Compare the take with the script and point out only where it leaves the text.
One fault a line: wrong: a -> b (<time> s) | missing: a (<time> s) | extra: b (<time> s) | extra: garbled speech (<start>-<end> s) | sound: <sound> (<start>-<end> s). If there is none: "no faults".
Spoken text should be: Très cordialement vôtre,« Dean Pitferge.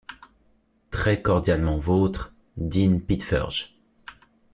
no faults